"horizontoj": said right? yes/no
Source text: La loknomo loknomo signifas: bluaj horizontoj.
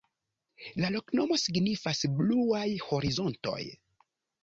yes